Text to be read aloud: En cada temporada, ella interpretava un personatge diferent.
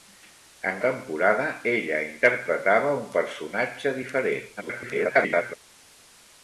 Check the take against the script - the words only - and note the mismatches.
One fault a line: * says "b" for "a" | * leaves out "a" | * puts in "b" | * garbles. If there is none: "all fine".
* leaves out "cada"
* garbles